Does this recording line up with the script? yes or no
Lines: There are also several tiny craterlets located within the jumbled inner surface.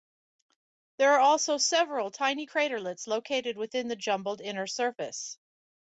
yes